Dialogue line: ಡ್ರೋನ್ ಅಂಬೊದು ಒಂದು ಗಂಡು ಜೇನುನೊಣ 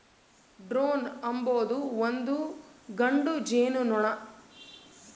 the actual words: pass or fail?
pass